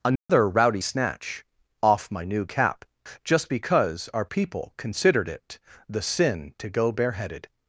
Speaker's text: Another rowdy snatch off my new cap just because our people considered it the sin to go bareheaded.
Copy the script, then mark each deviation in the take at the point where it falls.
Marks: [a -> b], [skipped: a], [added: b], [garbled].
Another rowdy snatch off my new cap just because our people considered it the sin to go bareheaded.